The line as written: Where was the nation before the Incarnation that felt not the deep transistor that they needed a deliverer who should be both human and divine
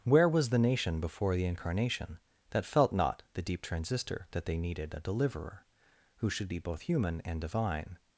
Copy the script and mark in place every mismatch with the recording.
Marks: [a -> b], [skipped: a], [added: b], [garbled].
Where was the nation before the Incarnation that felt not the deep transistor that they needed a deliverer who should be both human and divine